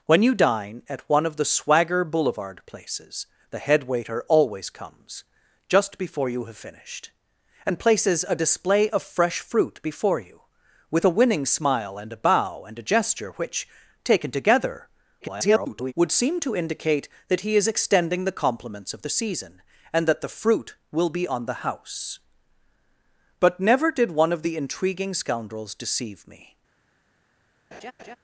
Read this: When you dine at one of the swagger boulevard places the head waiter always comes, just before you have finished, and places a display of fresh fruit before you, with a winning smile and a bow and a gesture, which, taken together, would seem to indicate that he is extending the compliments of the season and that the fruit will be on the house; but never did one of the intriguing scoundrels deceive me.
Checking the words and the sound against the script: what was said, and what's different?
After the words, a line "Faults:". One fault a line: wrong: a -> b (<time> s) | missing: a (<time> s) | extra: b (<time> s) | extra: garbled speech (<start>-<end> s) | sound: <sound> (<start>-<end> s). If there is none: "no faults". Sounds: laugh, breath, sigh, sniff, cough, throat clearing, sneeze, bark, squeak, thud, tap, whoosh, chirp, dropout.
When you dine at one of the swagger boulevard places the head waiter always comes, just before you have finished, and places a display of fresh fruit before you, with a winning smile and a bow and a gesture, which, taken together, [garbled] would seem to indicate that he is extending the compliments of the season and that the fruit will be on the house; but never did one of the intriguing scoundrels deceive me.
Faults:
extra: garbled speech (15.2-15.9 s)
sound: laugh (27.7-28.2 s)